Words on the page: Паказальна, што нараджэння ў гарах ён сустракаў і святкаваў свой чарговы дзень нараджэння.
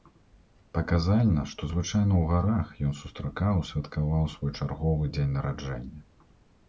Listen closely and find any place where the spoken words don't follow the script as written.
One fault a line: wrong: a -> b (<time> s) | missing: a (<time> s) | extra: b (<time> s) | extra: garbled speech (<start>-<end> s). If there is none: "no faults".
wrong: нараджэння -> звычайна (1.7 s)